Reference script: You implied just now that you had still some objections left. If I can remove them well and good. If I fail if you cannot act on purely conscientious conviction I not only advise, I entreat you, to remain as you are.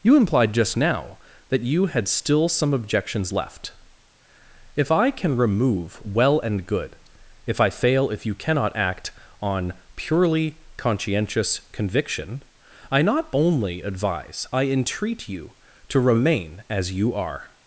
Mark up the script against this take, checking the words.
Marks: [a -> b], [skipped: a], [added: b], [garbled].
You implied just now that you had still some objections left. If I can remove [skipped: them] well and good. If I fail if you cannot act on purely conscientious conviction I not only advise, I entreat you, to remain as you are.